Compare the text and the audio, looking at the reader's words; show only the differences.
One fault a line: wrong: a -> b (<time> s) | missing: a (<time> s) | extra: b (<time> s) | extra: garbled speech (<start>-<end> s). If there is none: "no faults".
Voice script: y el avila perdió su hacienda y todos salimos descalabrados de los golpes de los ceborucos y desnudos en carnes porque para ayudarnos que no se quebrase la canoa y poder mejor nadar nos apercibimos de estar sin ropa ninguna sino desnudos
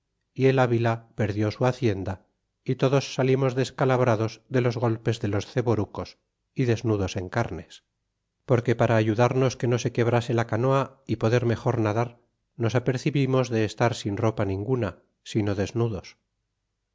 no faults